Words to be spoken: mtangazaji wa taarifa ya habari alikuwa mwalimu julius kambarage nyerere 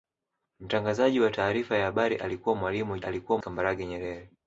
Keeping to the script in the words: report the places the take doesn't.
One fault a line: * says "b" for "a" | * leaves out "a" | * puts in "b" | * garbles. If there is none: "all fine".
* says "alikuwa" for "julius"